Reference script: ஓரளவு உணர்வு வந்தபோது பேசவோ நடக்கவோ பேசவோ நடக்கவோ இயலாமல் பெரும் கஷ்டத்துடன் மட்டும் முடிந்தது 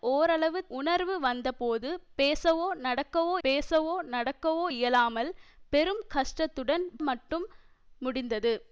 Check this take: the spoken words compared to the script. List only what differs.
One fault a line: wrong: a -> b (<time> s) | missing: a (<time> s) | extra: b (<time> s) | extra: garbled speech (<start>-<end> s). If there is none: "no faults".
no faults